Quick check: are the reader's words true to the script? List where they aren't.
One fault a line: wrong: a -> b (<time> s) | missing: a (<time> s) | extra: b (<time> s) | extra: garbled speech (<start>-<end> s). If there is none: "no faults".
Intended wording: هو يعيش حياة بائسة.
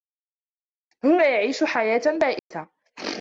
no faults